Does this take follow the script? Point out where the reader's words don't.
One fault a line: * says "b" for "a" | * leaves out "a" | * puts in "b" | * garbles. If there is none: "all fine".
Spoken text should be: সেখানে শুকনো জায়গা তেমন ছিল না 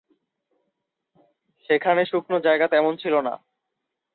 all fine